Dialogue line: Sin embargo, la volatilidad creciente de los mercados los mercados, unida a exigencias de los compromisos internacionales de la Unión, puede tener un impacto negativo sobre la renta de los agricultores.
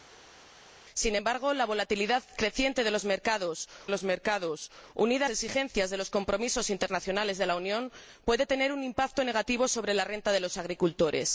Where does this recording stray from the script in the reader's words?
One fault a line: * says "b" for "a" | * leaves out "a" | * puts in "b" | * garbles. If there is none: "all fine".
all fine